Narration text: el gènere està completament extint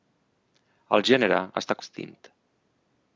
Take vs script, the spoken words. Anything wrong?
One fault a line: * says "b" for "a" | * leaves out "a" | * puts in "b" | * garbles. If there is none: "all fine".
* leaves out "completament"